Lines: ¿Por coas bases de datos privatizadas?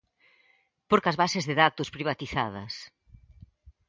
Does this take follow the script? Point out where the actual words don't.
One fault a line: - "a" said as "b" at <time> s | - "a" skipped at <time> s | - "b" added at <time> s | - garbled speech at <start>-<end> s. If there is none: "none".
none